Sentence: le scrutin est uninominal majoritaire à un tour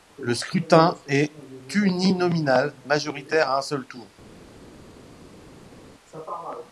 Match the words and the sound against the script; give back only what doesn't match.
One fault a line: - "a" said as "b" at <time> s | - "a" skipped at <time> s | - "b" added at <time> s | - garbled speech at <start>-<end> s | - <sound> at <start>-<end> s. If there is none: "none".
- "seul" added at 3.6 s